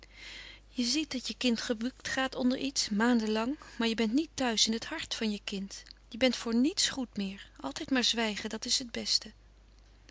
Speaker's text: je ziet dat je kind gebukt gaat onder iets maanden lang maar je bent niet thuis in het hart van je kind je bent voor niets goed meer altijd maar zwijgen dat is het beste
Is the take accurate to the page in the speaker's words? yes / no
yes